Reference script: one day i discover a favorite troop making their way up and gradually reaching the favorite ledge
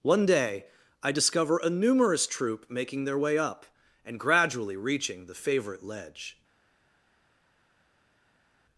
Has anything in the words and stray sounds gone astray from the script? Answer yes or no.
yes